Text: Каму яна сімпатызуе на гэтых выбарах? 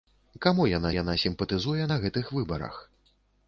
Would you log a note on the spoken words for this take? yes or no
yes